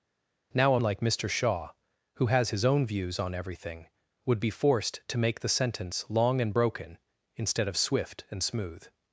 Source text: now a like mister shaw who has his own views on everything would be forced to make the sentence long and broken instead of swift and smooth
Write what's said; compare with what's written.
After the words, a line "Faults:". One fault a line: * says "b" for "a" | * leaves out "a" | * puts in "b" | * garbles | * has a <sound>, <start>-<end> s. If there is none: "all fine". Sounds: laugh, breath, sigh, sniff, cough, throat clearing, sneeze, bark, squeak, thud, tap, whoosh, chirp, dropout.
now a like mister shaw who has his own views on everything would be forced to make the sentence long and broken instead of swift and smooth
Faults:
all fine